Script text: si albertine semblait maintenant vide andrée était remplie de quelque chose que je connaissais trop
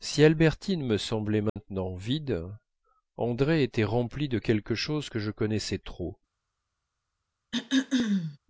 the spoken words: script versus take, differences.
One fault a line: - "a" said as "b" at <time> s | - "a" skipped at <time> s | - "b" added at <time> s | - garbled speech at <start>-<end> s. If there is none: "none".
- "me" added at 0.8 s